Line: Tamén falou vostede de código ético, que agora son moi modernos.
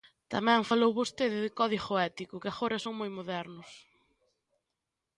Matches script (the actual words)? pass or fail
pass